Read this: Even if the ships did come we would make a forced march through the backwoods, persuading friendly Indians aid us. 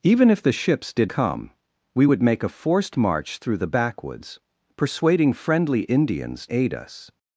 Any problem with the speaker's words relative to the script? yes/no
no